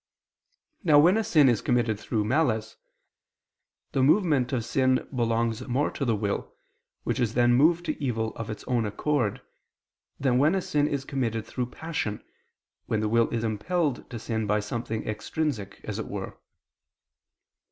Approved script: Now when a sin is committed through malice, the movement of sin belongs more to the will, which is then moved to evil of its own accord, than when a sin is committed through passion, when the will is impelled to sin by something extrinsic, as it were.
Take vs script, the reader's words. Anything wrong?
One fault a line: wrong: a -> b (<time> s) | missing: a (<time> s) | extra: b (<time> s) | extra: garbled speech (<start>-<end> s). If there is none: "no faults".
no faults